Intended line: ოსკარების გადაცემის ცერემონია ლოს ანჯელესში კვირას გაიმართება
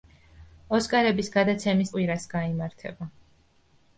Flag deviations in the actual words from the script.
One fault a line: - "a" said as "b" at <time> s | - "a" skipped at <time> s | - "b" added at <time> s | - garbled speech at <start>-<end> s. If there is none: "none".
- "ცერემონია ლოს ანჯელესში" skipped at 1.9 s